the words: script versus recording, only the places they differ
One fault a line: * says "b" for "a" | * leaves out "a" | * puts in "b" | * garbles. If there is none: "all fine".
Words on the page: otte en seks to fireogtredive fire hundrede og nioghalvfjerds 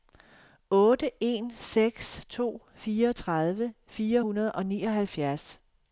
all fine